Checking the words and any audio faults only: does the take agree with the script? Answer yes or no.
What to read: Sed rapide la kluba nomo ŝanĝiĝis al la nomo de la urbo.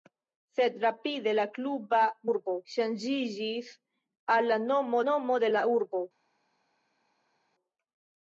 no